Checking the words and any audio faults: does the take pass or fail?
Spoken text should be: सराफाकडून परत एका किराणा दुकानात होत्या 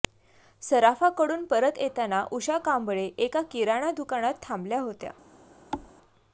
fail